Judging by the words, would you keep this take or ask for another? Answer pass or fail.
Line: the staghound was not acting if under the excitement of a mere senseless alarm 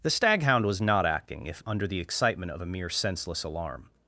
pass